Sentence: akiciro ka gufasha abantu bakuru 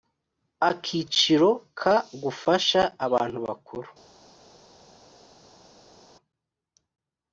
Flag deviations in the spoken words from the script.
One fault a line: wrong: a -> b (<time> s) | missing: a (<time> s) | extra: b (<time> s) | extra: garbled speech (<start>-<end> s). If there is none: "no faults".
no faults